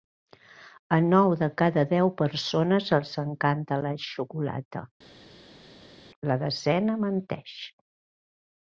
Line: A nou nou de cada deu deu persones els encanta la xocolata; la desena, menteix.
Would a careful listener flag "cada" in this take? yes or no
no